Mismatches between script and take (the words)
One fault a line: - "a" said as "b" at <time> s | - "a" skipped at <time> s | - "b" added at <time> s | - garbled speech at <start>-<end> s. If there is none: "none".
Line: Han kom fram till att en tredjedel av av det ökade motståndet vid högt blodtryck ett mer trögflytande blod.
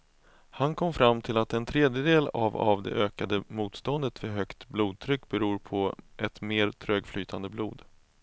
- "beror på" added at 5.3 s